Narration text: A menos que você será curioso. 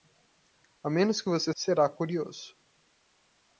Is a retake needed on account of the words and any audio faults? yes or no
no